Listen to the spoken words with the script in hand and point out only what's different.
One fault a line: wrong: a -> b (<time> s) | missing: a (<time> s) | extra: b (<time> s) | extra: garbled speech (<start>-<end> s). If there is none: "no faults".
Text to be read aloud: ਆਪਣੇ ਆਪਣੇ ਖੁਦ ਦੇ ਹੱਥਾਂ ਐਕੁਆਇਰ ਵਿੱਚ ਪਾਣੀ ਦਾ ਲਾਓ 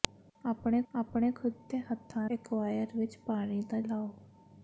no faults